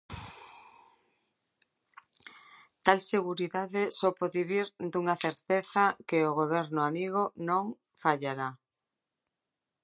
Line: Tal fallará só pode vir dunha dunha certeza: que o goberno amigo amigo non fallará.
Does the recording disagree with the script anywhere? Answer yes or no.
yes